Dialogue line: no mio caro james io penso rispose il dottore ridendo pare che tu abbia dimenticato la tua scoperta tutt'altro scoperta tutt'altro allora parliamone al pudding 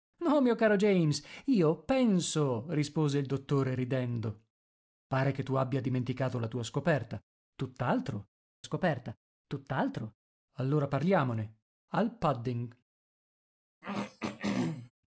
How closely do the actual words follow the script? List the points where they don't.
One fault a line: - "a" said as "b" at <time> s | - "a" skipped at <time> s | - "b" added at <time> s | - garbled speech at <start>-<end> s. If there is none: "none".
none